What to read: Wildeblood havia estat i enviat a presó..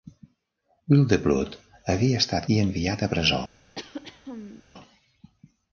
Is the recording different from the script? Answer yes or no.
no